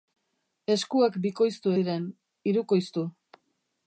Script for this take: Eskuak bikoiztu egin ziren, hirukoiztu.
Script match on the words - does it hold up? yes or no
no